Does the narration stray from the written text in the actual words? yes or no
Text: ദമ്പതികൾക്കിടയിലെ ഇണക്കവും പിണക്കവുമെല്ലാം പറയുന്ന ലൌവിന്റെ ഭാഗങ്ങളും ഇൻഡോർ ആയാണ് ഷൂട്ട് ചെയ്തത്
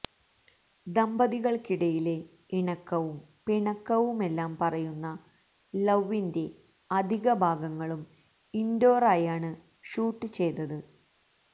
yes